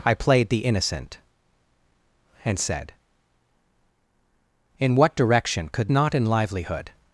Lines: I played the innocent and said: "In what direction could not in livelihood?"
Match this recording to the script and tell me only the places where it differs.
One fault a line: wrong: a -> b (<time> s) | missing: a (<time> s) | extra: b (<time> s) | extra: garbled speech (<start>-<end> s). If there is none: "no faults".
no faults